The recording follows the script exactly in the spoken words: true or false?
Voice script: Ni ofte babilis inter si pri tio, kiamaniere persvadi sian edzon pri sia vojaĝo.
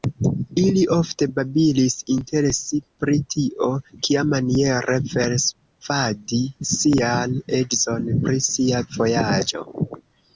false